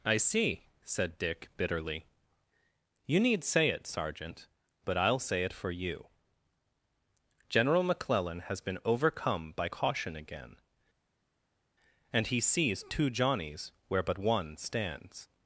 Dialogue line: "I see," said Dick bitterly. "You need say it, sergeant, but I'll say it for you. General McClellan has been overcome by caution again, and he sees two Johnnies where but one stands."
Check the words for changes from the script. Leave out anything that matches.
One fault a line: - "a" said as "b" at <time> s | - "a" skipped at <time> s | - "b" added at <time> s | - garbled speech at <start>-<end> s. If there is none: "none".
none